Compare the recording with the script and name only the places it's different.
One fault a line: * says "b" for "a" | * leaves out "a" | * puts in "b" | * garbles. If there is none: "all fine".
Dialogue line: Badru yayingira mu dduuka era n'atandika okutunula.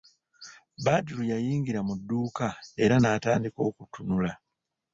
all fine